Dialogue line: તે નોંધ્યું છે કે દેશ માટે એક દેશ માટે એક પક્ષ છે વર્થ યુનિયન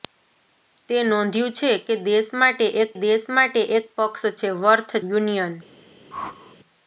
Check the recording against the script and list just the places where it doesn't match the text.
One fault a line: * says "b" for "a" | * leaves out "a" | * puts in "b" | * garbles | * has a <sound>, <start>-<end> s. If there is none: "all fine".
* has a whoosh, 6.1-6.6 s